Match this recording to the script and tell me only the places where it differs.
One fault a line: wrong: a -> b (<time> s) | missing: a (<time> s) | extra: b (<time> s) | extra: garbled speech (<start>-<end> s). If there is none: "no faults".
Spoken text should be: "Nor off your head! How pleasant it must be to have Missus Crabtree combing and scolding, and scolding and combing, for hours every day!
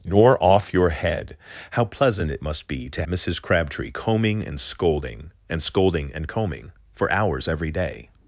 missing: have (3.0 s)